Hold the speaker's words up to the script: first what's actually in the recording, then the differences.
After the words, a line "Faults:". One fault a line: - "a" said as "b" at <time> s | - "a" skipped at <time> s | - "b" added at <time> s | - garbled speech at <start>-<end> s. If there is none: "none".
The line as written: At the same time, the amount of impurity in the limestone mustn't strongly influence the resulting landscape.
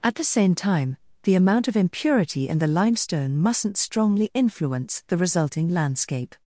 At the same time, the amount of impurity in the limestone mustn't strongly influence the resulting landscape.
Faults:
none